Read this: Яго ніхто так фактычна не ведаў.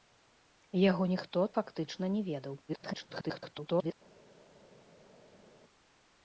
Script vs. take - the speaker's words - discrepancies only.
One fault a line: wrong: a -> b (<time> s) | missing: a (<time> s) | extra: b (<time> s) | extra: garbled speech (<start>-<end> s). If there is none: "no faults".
missing: так (1.4 s)
extra: garbled speech (2.7-3.9 s)